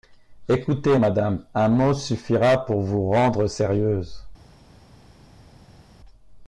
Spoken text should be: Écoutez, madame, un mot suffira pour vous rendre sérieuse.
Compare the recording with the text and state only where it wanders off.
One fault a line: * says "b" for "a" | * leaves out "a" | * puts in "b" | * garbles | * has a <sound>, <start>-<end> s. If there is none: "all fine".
all fine